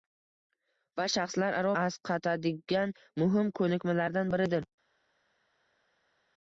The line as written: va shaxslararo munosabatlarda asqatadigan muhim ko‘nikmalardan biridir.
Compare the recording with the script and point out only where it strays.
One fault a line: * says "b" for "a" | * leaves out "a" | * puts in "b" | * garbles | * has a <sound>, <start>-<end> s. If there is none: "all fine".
* leaves out "munosabatlarda"